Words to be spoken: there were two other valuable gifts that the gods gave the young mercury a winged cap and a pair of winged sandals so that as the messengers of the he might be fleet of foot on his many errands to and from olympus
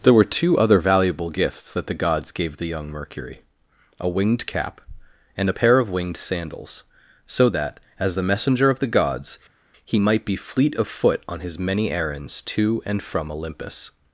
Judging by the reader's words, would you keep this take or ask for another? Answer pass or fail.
fail